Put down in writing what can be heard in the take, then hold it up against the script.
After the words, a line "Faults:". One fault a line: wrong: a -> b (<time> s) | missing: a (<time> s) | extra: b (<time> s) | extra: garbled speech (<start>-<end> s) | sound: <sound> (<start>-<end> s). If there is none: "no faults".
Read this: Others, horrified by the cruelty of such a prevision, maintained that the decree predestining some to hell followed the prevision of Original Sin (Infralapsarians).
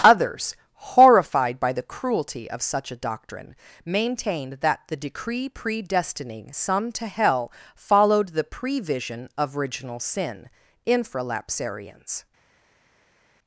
Others, horrified by the cruelty of such a doctrine, maintained that the decree predestining some to hell followed the prevision of Original Sin (Infralapsarians).
Faults:
wrong: prevision -> doctrine (3.0 s)